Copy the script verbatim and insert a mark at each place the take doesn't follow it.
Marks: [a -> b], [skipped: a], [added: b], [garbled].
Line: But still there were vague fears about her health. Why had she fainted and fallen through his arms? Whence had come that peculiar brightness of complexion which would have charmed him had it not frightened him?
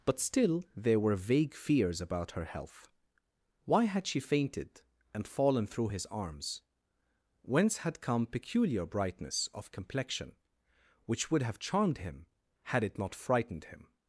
But still there were vague fears about her health. Why had she fainted and fallen through his arms? Whence had come [skipped: that] peculiar brightness of complexion which would have charmed him had it not frightened him?